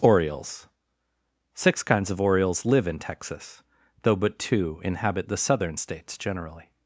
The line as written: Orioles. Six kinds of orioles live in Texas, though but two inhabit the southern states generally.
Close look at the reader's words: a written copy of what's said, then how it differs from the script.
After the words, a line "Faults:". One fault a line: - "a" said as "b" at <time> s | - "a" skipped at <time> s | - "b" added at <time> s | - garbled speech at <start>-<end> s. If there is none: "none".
Orioles. Six kinds of orioles live in Texas, though but two inhabit the southern states generally.
Faults:
none